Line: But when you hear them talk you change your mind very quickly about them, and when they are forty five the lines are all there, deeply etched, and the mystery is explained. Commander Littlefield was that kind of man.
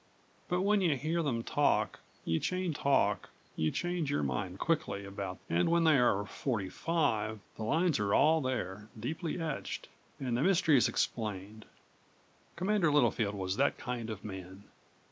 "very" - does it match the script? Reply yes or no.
no